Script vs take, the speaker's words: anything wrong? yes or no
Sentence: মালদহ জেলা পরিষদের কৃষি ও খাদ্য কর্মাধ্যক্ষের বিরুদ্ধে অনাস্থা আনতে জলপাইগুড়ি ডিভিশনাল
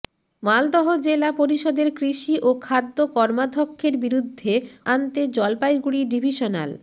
yes